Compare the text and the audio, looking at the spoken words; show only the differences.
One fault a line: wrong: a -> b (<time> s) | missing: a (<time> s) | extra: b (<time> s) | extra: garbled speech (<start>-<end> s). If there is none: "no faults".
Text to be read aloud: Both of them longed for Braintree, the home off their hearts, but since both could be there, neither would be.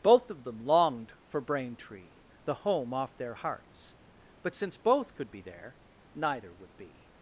no faults